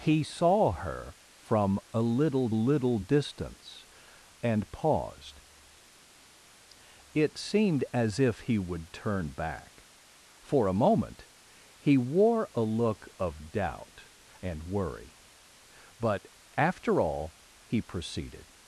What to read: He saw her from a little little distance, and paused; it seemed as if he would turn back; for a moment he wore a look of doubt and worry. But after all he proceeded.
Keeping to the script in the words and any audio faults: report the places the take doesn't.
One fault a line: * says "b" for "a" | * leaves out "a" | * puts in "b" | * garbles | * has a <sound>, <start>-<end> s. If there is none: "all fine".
all fine